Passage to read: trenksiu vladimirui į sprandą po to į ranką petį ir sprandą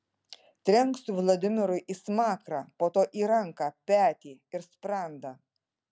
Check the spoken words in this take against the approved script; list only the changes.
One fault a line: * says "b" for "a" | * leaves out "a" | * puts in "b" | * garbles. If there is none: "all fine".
* says "smakrą" for "sprandą"